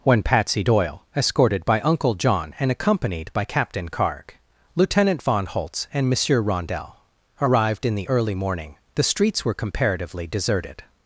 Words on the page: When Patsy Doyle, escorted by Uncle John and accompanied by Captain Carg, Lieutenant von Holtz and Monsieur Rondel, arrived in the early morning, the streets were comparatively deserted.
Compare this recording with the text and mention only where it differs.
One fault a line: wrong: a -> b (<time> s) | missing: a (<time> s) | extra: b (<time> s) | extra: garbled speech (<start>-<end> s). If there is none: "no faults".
no faults